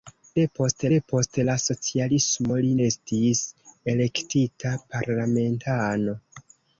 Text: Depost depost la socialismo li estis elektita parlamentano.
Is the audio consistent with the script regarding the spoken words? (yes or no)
yes